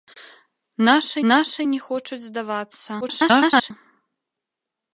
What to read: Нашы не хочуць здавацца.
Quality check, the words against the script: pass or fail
fail